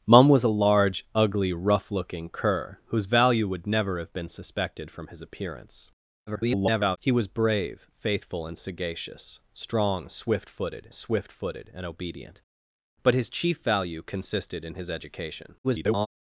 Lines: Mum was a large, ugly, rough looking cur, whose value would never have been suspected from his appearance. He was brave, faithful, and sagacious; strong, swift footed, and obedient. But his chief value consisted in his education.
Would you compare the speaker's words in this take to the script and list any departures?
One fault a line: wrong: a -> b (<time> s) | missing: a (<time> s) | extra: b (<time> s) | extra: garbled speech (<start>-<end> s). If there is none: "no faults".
extra: garbled speech (6.3-7.0 s)
extra: swift footed (10.9 s)
extra: garbled speech (15.6-16.1 s)